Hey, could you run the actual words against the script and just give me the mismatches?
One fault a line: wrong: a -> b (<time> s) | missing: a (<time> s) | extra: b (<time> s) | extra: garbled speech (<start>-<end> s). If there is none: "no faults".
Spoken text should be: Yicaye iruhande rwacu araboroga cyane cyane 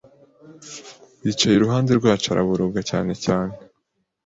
no faults